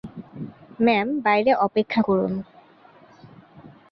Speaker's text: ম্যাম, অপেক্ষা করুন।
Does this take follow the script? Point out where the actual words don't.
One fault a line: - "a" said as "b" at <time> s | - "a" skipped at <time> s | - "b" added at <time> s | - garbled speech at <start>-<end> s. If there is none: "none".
- "বাইরে" added at 1.2 s